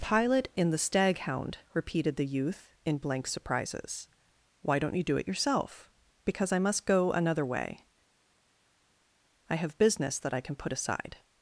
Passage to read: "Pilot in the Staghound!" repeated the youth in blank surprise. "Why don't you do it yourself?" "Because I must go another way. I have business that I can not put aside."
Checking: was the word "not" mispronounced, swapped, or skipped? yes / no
yes